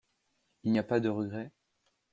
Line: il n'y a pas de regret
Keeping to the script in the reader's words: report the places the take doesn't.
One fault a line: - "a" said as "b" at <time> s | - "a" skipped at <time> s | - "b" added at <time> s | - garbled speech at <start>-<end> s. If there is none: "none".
none